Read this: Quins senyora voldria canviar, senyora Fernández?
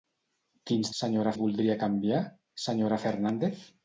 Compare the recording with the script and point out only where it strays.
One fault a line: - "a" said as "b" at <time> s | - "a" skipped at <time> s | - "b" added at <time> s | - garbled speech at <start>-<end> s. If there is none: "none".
none